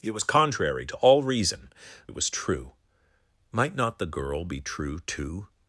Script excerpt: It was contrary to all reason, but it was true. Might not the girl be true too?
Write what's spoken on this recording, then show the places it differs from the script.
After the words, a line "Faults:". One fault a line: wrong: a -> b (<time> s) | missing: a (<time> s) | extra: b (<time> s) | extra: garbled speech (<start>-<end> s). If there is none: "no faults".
It was contrary to all reason, it was true. Might not the girl be true too?
Faults:
missing: but (1.7 s)